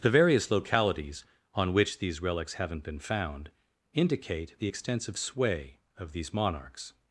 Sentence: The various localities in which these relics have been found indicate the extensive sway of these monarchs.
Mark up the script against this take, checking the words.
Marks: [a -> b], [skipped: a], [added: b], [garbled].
The various localities [in -> on] which these relics [have -> haven't] been found indicate the extensive sway of these monarchs.